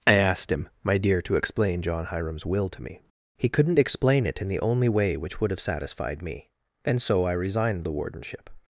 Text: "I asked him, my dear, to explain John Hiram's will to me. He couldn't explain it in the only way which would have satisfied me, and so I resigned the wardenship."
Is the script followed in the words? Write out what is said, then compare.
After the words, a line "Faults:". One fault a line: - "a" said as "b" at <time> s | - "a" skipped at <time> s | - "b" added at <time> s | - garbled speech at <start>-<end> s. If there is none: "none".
"I asked him, my dear, to explain John Hiram's will to me. He couldn't explain it in the only way which would have satisfied me, and so I resigned the wardenship."
Faults:
none